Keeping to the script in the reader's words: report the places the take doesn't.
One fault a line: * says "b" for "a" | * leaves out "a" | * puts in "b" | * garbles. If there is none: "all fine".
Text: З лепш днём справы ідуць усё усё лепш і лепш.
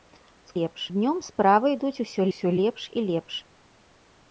all fine